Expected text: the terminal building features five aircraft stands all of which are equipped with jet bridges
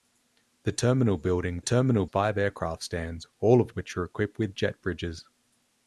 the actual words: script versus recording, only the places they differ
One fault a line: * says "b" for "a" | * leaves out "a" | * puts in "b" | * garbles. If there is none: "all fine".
* says "terminal" for "features"